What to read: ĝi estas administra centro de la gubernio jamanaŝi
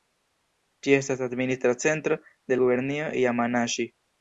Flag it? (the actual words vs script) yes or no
yes